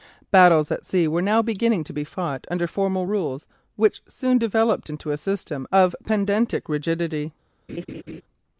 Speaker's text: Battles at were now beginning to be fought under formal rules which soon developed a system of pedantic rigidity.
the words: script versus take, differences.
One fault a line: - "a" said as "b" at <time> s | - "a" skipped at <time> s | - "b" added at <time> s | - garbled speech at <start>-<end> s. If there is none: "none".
- "sea" added at 0.8 s
- "into" added at 4.9 s